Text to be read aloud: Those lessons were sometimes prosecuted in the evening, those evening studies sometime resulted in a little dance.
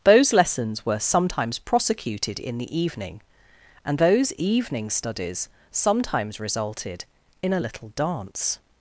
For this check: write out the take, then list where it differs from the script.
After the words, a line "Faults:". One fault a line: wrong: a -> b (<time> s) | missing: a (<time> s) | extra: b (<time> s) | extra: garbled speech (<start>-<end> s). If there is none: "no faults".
Those lessons were sometimes prosecuted in the evening, and those evening studies sometimes resulted in a little dance.
Faults:
extra: and (3.9 s)
wrong: sometime -> sometimes (5.7 s)